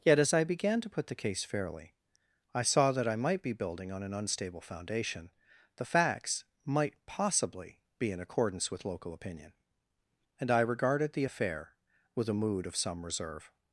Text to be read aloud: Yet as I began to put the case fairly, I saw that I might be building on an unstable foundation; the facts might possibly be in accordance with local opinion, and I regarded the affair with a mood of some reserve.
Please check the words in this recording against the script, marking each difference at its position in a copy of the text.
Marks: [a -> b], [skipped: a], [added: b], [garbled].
Yet as I began to put the case fairly, I saw that I might be building on an unstable foundation; the facts might possibly be in accordance with local opinion, and I regarded the affair with a mood of some reserve.